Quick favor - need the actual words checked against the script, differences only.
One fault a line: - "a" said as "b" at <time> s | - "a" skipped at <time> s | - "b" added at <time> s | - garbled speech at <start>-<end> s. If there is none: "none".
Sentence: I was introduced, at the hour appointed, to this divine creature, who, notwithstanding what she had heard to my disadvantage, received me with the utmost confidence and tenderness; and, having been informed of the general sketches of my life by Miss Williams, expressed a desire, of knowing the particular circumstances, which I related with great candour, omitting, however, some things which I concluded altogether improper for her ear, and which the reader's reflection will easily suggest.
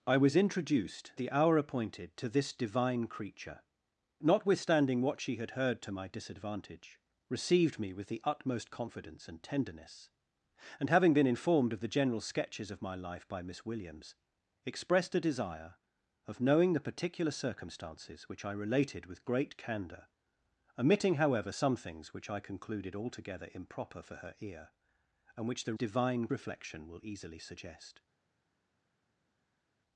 - "at" skipped at 1.1 s
- "who" skipped at 3.6 s
- "reader's" said as "divine" at 25.7 s